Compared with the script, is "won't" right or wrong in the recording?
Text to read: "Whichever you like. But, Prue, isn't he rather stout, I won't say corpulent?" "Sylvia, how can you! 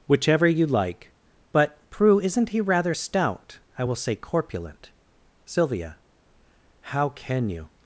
wrong